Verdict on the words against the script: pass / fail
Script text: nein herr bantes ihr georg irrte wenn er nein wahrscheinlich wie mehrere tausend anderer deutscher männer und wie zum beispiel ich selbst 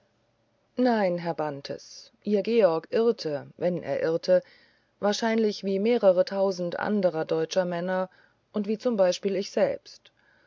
fail